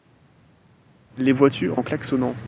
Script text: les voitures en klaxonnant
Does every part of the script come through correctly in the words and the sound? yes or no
yes